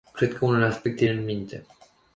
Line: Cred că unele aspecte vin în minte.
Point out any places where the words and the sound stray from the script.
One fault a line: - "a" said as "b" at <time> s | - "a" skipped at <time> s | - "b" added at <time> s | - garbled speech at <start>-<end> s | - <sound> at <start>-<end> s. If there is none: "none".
- "vin" skipped at 1.1 s